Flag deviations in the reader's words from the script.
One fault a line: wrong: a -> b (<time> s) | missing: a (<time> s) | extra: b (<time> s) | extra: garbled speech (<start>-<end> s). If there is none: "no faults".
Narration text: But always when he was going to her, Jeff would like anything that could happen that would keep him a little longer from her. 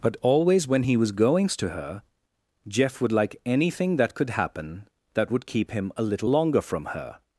wrong: going -> goings (1.1 s)